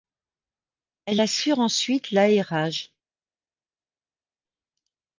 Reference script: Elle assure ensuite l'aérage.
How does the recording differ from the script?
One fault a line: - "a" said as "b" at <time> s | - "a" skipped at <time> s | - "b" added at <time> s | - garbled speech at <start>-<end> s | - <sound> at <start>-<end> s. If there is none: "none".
none